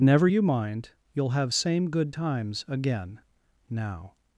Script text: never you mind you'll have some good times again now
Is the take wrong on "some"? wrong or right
wrong